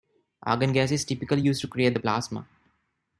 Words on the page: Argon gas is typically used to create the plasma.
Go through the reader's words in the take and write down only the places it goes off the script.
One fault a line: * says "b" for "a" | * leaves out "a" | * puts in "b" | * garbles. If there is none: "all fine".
all fine